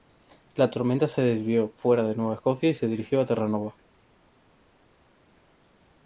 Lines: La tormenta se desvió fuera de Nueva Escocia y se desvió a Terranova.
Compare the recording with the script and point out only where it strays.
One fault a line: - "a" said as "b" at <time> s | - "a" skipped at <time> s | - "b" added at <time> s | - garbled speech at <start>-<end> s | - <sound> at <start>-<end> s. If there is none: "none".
- "desvió" said as "dirigió" at 2.9 s